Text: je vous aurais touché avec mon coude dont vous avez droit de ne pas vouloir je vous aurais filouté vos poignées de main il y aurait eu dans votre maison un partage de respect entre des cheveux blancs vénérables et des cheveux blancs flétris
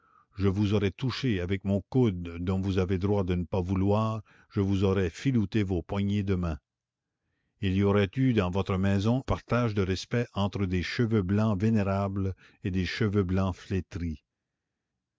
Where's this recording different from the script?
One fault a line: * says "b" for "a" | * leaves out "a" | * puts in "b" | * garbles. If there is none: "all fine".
* leaves out "un"